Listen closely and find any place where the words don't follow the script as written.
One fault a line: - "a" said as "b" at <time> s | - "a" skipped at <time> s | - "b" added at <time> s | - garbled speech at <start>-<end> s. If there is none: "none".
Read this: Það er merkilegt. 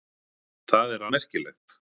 none